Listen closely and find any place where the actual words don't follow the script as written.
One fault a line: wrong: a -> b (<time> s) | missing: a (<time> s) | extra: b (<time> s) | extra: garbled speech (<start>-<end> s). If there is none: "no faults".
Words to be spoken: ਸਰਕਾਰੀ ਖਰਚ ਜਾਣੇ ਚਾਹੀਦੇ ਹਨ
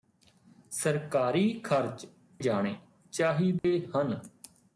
no faults